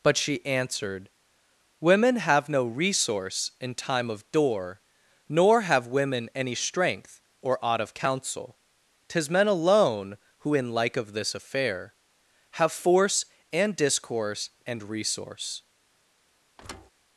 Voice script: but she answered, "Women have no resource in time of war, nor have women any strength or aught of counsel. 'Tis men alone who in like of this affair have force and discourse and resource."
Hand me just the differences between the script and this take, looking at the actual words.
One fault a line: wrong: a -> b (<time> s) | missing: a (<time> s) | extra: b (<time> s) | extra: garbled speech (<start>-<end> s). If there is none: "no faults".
wrong: war -> door (4.3 s)